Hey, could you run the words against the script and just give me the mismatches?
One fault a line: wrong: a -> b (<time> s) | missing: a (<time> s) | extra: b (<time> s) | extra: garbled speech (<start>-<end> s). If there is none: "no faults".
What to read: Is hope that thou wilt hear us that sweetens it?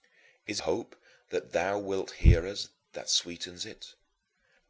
no faults